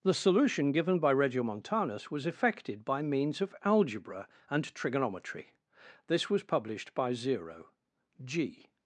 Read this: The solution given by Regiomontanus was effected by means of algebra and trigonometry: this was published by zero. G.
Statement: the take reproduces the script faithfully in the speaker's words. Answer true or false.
true